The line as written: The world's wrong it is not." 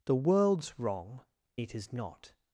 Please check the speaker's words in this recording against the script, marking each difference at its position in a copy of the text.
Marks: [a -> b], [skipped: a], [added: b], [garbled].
The world's wrong it is not."